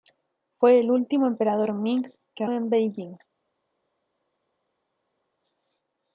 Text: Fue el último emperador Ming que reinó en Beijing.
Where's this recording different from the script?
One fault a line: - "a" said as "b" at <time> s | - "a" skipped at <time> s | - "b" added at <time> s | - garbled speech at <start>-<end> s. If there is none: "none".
- "reinó" skipped at 2.5 s